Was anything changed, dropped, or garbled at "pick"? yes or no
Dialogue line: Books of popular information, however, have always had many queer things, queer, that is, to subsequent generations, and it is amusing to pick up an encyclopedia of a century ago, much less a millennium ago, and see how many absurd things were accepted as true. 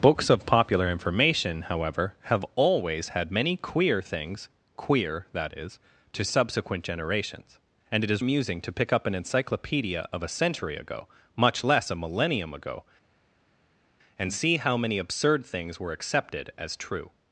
no